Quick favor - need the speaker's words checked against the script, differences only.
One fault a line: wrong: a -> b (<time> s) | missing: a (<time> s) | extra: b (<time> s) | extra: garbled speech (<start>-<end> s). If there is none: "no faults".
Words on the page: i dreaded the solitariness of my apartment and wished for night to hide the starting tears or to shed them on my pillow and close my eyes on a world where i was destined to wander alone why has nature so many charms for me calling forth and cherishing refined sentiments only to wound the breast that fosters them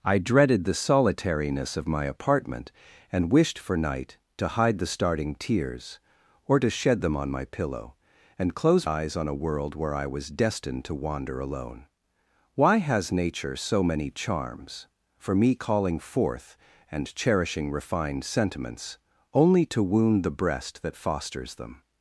missing: my (8.9 s)